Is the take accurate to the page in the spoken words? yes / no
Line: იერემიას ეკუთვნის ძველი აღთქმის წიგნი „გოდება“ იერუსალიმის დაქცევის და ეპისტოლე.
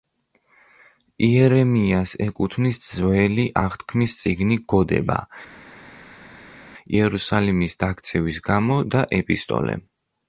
no